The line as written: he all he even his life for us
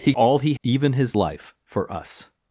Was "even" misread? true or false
false